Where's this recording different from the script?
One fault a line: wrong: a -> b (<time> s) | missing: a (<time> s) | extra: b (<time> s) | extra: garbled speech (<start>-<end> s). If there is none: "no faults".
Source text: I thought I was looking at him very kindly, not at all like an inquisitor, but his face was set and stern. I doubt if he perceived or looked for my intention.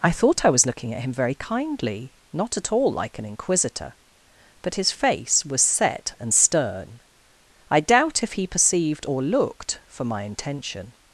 no faults